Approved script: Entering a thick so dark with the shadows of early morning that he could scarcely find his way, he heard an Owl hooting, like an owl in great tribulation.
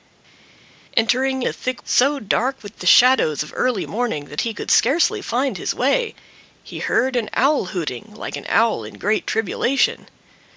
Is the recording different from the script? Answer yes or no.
no